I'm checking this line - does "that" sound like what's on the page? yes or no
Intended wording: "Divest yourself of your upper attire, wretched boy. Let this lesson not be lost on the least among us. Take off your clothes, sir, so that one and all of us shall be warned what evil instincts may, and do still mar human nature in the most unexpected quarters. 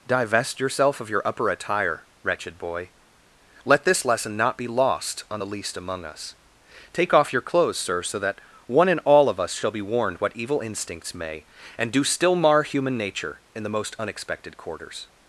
yes